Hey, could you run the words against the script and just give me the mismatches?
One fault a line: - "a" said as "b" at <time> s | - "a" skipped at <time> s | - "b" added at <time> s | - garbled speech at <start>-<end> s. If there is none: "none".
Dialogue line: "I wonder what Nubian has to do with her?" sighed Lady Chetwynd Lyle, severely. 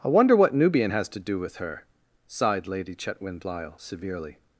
none